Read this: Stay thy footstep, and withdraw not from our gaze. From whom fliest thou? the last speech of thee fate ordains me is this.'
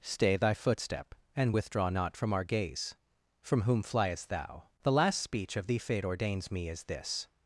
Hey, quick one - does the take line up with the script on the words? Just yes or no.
yes